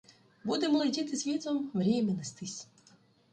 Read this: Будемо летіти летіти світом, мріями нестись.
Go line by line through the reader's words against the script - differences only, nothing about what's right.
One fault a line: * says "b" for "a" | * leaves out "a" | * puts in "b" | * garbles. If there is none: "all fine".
* leaves out "летіти"